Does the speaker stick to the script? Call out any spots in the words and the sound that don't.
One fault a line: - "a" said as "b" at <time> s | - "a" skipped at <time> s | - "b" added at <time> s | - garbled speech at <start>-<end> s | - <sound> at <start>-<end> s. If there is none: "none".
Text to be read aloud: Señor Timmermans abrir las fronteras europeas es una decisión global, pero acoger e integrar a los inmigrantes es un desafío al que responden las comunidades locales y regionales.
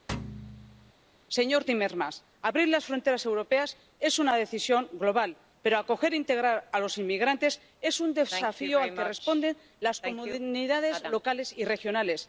- thud at 0.1-0.9 s